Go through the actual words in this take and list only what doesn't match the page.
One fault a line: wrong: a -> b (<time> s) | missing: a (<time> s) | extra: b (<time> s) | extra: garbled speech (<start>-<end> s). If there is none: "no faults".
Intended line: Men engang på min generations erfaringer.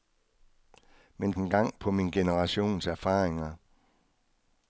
no faults